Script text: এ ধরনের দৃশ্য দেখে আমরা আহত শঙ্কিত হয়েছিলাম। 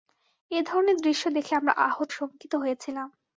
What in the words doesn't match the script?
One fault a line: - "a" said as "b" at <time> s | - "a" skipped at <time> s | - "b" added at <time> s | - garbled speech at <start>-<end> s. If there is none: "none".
none